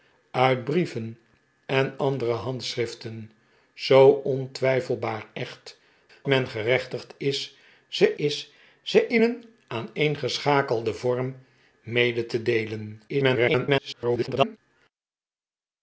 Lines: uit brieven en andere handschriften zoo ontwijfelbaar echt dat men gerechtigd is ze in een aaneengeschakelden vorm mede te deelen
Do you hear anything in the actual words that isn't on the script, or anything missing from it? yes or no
yes